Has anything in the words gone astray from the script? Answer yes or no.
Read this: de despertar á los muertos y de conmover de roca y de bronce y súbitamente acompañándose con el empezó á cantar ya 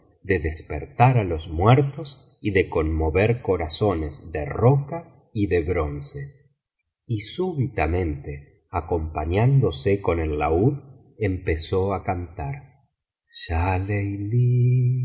yes